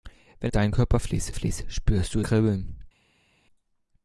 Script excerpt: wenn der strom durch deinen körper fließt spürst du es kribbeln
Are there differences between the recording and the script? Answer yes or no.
yes